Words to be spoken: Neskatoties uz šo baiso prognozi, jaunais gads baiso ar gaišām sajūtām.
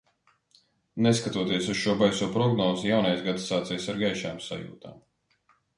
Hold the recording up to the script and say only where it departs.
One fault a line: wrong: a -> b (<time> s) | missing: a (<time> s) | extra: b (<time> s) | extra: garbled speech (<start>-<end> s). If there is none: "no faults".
wrong: baiso -> sācies (3.5 s)